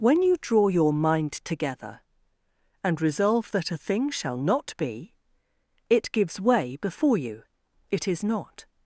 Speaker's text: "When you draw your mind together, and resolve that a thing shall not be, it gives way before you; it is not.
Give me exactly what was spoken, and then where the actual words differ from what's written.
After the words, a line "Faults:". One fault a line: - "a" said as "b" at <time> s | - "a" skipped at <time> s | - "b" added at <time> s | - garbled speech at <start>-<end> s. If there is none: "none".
"When you draw your mind together, and resolve that a thing shall not be, it gives way before you; it is not.
Faults:
none